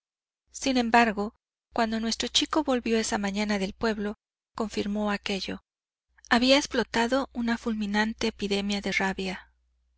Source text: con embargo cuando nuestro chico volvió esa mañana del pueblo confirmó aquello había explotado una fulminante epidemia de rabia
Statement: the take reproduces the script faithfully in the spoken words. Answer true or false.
false